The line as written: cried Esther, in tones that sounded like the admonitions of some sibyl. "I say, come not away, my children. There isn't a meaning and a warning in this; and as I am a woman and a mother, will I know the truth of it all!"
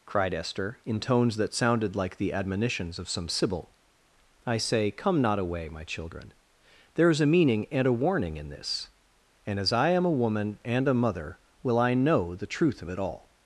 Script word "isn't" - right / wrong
wrong